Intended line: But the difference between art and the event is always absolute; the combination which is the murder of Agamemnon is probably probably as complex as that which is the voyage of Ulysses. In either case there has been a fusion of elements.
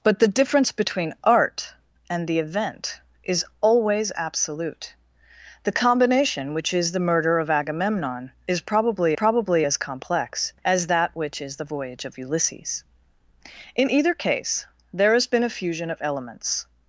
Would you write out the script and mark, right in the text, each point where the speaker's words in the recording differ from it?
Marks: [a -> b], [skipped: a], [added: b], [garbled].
But the difference between art and the event is always absolute; the combination which is the murder of Agamemnon is probably probably as complex as that which is the voyage of Ulysses. In either case there has been a fusion of elements.